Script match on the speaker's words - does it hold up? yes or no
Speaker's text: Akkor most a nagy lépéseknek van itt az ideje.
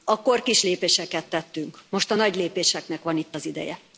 no